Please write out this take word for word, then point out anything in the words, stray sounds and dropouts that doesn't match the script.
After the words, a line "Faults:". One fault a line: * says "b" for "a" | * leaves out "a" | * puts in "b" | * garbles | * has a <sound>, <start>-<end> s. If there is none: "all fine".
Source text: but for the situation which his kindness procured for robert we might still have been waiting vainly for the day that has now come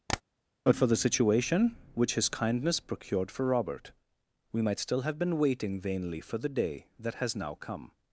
but for the situation which his kindness procured for robert we might still have been waiting vainly for the day that has now come
Faults:
* has a tap, 0.1-0.2 s